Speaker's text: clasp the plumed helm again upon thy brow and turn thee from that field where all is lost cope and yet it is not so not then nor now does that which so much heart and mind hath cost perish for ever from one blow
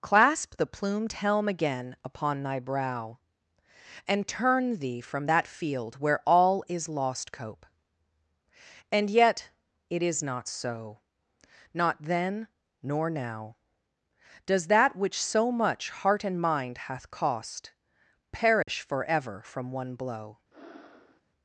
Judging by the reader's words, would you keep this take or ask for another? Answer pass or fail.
pass